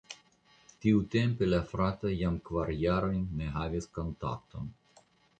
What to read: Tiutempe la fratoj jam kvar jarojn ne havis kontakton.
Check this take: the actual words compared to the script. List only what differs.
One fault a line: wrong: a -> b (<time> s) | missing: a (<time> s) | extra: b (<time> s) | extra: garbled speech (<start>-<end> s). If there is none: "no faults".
no faults